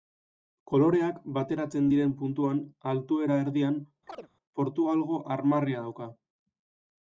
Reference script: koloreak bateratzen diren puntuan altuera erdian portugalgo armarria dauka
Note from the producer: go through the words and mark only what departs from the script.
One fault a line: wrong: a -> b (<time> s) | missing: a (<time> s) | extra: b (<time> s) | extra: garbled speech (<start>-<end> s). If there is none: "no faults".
no faults